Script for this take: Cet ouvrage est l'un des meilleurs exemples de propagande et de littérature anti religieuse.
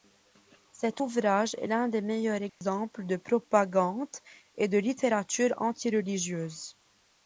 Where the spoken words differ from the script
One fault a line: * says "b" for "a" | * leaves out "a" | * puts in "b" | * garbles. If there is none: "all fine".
all fine